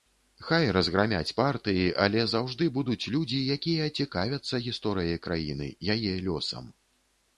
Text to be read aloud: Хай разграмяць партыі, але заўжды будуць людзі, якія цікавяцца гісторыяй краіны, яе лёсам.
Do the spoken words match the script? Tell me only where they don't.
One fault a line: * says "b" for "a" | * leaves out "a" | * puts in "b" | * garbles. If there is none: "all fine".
all fine